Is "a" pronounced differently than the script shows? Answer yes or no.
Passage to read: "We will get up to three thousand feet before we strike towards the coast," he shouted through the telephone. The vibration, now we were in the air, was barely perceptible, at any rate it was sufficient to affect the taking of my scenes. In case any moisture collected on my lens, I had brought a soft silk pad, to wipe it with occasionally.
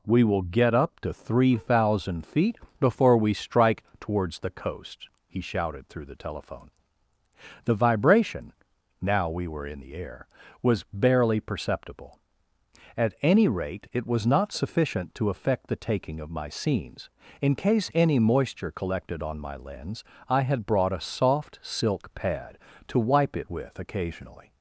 no